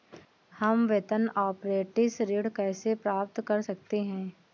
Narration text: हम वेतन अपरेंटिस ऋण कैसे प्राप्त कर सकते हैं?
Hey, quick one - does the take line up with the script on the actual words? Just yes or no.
yes